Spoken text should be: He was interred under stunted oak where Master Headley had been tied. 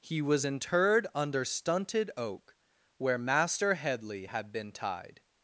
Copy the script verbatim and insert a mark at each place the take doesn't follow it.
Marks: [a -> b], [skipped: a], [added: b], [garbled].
He was interred under stunted oak where Master Headley had been tied.